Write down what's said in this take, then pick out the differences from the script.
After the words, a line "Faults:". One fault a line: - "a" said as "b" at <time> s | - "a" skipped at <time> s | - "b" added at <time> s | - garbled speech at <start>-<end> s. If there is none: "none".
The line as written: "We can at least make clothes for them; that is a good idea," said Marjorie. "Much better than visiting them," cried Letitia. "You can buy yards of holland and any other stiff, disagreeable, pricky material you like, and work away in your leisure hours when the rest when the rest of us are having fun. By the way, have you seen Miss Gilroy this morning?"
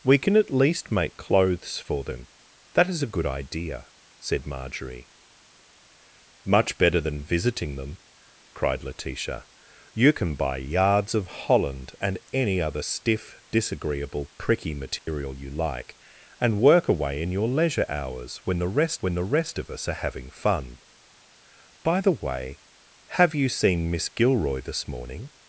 "We can at least make clothes for them; that is a good idea," said Marjorie. "Much better than visiting them," cried Letitia. "You can buy yards of holland and any other stiff, disagreeable, pricky material you like, and work away in your leisure hours when the rest when the rest of us are having fun. By the way, have you seen Miss Gilroy this morning?"
Faults:
none